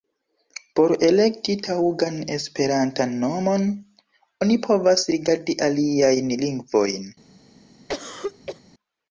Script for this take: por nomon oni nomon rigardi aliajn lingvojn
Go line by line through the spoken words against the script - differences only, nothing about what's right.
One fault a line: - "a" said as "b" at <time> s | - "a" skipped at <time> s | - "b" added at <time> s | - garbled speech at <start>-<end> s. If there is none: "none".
- "elekti taŭgan esperantan" added at 1.1 s
- "nomon" said as "povas" at 4.7 s